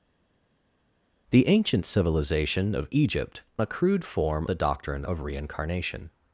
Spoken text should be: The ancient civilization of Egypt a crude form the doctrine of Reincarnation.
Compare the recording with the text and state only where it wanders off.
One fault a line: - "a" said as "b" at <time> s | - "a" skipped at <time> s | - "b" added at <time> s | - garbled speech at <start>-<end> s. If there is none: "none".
none